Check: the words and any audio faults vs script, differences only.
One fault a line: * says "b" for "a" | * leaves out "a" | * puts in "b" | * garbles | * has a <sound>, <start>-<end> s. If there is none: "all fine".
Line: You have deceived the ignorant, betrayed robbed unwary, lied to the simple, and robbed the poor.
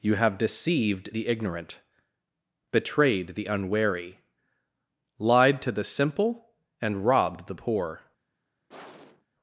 * says "the" for "robbed"
* has a sigh, 8.7-9.3 s